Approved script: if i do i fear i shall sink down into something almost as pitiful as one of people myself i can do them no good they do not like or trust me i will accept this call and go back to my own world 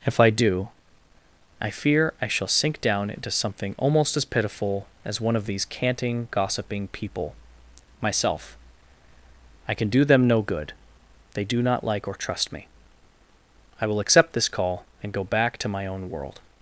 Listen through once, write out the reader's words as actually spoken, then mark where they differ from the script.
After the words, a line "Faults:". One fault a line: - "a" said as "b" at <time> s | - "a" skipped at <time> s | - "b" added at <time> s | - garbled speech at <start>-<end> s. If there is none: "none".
if i do i fear i shall sink down into something almost as pitiful as one of these canting gossiping people myself i can do them no good they do not like or trust me i will accept this call and go back to my own world
Faults:
- "these canting gossiping" added at 5.5 s